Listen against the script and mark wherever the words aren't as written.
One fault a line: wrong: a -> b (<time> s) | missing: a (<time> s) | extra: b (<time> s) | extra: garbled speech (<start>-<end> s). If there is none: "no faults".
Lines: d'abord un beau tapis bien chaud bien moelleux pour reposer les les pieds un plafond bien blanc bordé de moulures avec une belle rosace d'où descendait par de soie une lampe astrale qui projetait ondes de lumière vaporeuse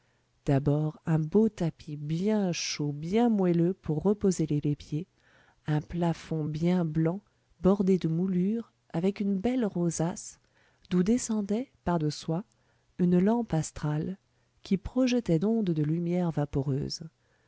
no faults